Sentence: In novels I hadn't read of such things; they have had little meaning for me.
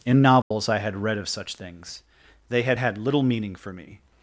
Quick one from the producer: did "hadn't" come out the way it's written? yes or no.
no